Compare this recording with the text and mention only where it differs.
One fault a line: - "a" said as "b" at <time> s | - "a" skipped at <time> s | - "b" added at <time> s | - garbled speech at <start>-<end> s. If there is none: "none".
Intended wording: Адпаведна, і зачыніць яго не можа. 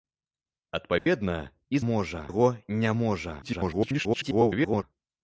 - "зачыніць" said as "можа" at 1.9 s
- garbled speech at 3.4-4.8 s